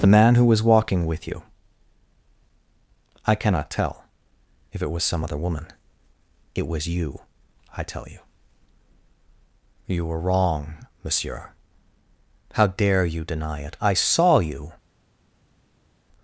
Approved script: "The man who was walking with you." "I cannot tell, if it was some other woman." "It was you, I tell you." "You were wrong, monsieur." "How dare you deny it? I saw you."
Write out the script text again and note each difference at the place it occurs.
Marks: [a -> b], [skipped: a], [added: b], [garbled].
"The man who was walking with you." "I cannot tell, if it was some other woman." "It was you, I tell you." "You were wrong, monsieur." "How dare you deny it? I saw you."